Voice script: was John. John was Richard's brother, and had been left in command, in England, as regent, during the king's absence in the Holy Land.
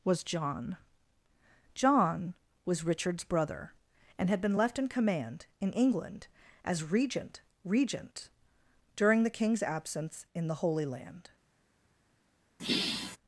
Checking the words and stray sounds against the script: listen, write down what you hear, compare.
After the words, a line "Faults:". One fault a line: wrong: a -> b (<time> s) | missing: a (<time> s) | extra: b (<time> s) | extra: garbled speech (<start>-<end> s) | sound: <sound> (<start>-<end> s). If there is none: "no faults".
was John. John was Richard's brother, and had been left in command, in England, as regent regent, during the king's absence in the Holy Land.
Faults:
extra: regent (7.6 s)
sound: sigh (12.6-13.2 s)